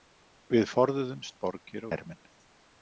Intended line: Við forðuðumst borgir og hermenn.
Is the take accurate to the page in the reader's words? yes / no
no